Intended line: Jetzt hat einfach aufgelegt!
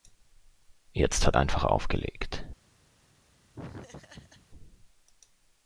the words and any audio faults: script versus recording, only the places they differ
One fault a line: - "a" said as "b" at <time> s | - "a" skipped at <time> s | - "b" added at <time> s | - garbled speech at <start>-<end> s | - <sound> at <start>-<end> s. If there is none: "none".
- laugh at 3.5-4.5 s